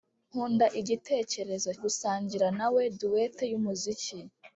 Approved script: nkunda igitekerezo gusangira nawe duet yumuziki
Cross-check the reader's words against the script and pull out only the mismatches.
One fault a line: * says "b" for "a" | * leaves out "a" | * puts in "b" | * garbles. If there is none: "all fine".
all fine